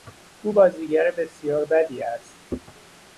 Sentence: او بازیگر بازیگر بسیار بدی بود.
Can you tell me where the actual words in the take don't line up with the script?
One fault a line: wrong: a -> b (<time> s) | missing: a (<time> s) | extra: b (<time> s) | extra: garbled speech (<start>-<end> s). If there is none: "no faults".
missing: بازیگر (1.1 s)
wrong: بود -> است (2.0 s)